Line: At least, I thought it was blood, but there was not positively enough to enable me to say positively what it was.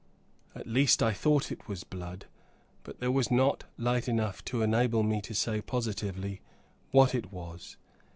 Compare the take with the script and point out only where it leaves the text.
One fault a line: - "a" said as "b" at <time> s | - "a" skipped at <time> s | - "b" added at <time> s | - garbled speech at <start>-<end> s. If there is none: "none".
- "positively" said as "light" at 3.8 s